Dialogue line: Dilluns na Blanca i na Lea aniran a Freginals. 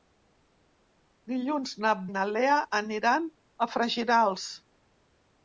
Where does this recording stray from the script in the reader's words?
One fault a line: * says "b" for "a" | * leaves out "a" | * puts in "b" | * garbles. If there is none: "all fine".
* leaves out "Blanca"